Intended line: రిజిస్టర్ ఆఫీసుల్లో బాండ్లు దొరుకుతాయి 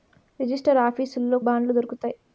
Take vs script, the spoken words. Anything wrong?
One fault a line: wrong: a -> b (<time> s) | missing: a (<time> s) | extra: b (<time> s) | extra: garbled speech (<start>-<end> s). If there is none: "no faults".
no faults